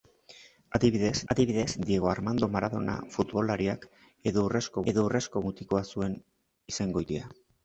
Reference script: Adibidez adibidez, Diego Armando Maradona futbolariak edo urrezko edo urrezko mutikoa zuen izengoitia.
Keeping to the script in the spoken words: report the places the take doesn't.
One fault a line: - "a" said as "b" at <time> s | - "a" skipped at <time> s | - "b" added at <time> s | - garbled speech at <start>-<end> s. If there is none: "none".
none